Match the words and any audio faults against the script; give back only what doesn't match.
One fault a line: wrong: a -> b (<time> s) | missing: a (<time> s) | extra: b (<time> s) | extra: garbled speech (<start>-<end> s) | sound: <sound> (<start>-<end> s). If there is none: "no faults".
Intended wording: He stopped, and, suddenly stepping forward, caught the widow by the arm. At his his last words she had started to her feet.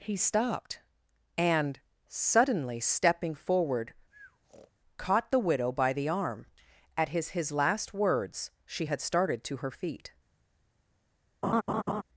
sound: breath (4.1-4.7 s)
sound: laugh (11.4-12.0 s)